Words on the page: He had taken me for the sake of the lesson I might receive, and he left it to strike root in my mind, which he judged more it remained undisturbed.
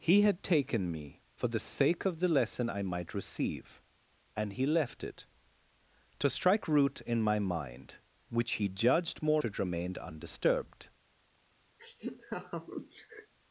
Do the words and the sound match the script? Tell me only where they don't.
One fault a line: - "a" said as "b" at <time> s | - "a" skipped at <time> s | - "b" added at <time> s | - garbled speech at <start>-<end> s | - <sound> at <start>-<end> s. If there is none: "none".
- laugh at 11.8-13.3 s